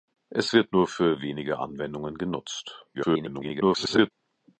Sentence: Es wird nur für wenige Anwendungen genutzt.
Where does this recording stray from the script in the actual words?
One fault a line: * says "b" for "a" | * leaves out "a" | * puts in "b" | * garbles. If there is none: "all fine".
* garbles